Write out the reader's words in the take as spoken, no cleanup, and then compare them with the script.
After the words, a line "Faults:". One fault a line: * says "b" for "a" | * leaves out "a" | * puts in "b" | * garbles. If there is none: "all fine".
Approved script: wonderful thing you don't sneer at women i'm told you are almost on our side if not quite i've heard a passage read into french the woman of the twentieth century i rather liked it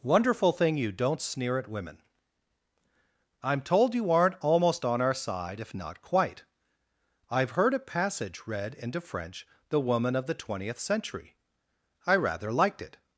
wonderful thing you don't sneer at women i'm told you aren't almost on our side if not quite i've heard a passage read into french the woman of the twentieth century i rather liked it
Faults:
* says "aren't" for "are"